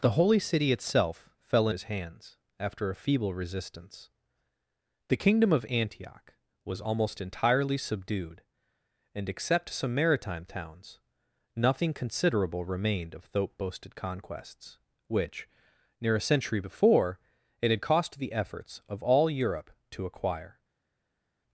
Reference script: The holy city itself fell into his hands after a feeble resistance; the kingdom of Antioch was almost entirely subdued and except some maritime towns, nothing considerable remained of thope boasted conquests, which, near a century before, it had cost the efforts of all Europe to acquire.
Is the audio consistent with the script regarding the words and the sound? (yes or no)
no